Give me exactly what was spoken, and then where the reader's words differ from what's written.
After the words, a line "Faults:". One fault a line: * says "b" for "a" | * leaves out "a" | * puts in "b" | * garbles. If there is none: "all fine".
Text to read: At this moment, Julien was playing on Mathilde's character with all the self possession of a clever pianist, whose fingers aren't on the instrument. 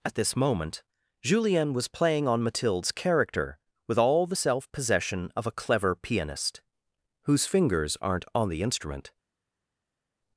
At this moment, Julien was playing on Mathilde's character with all the self possession of a clever pianist, whose fingers aren't on the instrument.
Faults:
all fine